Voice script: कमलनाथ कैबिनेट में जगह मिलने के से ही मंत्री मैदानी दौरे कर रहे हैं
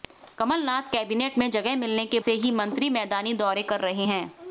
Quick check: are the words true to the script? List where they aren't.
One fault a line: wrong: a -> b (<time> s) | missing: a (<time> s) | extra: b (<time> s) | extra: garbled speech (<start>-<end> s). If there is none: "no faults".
no faults